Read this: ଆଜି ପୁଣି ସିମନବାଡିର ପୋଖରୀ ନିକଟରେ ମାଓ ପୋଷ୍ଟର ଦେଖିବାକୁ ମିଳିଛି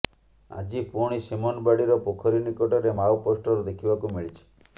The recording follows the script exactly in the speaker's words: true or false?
true